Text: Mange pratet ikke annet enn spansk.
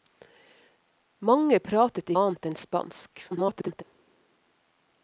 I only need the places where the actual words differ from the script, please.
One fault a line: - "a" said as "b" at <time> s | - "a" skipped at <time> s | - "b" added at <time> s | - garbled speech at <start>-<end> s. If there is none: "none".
- "ikke" skipped at 2.1 s
- garbled speech at 3.3-3.8 s